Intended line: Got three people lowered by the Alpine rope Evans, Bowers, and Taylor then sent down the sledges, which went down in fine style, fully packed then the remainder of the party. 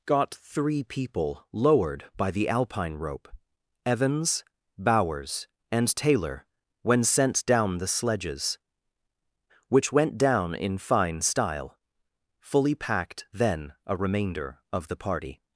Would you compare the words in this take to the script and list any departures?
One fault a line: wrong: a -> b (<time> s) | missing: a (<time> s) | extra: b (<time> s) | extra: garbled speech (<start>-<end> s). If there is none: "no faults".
wrong: then -> when (6.8 s)
wrong: the -> a (13.8 s)